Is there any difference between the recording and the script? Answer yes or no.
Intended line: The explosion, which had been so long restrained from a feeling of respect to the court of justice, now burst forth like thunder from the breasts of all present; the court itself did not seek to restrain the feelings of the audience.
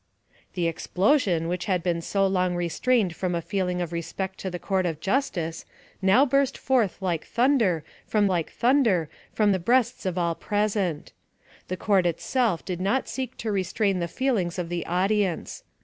yes